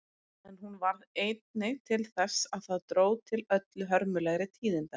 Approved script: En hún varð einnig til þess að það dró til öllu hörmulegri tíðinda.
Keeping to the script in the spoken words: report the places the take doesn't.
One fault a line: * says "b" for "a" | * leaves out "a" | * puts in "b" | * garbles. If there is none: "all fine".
all fine